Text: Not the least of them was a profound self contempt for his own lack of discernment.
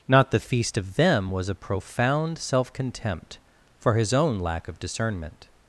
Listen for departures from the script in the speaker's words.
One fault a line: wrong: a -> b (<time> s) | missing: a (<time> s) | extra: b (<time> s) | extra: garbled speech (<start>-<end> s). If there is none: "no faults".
wrong: least -> feast (0.4 s)